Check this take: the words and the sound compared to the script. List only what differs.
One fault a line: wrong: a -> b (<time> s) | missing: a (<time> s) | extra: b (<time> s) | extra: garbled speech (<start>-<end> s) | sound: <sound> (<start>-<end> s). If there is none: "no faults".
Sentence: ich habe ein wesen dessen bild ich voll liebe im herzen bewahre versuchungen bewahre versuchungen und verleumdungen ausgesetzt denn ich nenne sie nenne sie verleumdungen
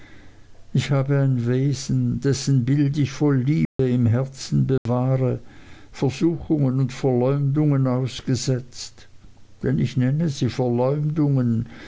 sound: dropout (3.7-3.8 s)
sound: dropout (4.8-4.9 s)
missing: bewahre versuchungen (6.8 s)
missing: nenne sie (10.5 s)